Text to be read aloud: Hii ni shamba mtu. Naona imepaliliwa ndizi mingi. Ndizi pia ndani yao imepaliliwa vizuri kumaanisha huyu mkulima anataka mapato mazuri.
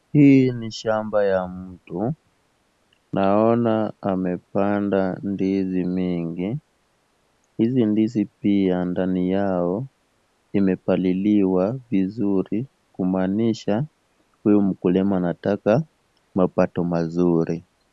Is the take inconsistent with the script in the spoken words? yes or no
yes